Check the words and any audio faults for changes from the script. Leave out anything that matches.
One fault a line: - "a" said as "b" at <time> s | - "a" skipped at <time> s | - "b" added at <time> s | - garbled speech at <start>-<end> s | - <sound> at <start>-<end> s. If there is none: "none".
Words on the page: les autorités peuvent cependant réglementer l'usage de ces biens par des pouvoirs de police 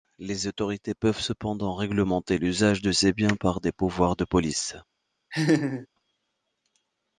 - laugh at 5.3-5.9 s